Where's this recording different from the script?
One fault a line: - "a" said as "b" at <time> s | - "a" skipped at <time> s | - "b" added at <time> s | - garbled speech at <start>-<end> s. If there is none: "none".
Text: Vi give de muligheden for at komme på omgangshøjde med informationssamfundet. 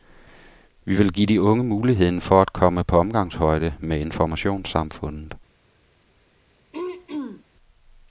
- "vil" added at 0.9 s
- "unge" added at 1.4 s